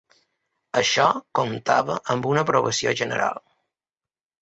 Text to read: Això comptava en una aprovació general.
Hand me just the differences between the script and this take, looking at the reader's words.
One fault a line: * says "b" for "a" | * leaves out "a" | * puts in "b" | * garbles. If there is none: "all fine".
* says "amb" for "en"